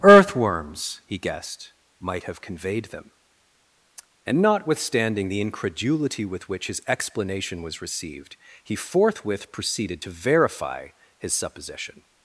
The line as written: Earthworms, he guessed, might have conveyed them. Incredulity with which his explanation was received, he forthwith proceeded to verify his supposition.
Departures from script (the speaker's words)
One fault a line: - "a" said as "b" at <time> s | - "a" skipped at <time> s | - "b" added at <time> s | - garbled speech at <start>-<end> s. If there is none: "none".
- "And notwithstanding the" added at 4.2 s